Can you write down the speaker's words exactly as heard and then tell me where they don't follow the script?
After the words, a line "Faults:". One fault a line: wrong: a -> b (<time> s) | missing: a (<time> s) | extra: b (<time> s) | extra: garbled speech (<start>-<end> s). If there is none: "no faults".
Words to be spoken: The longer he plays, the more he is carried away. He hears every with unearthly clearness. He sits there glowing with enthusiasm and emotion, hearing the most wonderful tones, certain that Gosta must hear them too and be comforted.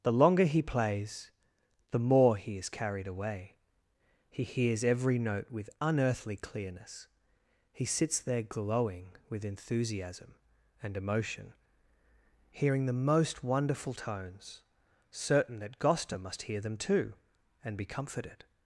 The longer he plays, the more he is carried away. He hears every note with unearthly clearness. He sits there glowing with enthusiasm and emotion, hearing the most wonderful tones, certain that Gosta must hear them too and be comforted.
Faults:
extra: note (5.2 s)